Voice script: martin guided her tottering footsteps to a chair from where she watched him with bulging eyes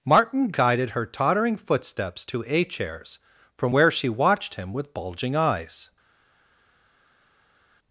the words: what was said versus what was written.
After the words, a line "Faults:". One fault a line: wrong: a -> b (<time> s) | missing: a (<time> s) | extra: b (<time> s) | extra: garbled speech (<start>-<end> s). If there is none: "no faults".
martin guided her tottering footsteps to a chairs from where she watched him with bulging eyes
Faults:
wrong: chair -> chairs (2.6 s)